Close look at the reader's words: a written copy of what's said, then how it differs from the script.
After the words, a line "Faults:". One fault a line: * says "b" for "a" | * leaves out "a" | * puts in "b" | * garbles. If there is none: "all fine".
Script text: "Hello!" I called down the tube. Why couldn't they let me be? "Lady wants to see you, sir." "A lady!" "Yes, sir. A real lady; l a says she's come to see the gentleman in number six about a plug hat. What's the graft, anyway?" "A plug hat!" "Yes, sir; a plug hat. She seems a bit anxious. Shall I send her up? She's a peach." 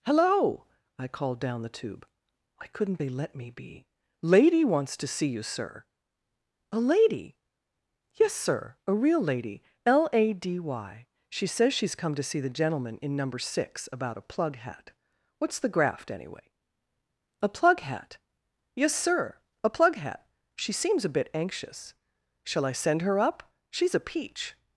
"Hello!" I called down the tube. Why couldn't they let me be? "Lady wants to see you, sir." "A lady!" "Yes, sir. A real lady; l a d y. She says she's come to see the gentleman in number six about a plug hat. What's the graft, anyway?" "A plug hat!" "Yes, sir; a plug hat. She seems a bit anxious. Shall I send her up? She's a peach."
Faults:
* puts in "d y She"